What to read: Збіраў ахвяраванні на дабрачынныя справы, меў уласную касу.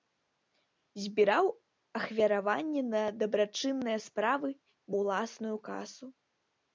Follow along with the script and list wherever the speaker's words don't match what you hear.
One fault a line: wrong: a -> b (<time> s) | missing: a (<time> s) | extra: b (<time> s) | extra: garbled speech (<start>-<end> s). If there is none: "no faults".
missing: меў (4.5 s)